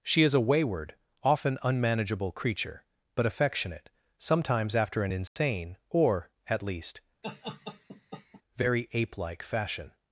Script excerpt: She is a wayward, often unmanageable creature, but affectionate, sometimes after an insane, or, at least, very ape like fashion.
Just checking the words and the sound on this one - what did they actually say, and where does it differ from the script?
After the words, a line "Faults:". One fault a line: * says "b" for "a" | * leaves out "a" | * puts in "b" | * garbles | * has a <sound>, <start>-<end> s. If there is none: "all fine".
She is a wayward, often unmanageable creature, but affectionate, sometimes after an insane, or, at least, very ape like fashion.
Faults:
* has a dropout, 5.3-5.4 s
* has a laugh, 7.2-8.4 s